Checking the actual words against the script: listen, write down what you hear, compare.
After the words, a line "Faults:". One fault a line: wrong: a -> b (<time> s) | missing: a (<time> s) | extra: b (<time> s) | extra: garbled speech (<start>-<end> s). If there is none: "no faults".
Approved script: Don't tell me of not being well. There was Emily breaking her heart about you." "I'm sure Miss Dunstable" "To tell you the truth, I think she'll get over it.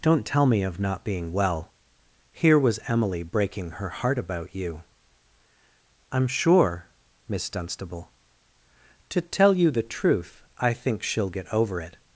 Don't tell me of not being well. Here was Emily breaking her heart about you." "I'm sure Miss Dunstable" "To tell you the truth, I think she'll get over it.
Faults:
wrong: There -> Here (2.3 s)